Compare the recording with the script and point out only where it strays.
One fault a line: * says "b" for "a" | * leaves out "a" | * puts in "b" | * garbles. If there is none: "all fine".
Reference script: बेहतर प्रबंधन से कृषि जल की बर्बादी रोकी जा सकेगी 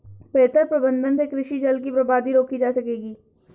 all fine